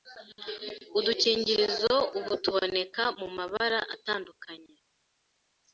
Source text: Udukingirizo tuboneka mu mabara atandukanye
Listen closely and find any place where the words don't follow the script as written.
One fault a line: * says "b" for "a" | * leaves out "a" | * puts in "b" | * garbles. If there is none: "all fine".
* puts in "ubu"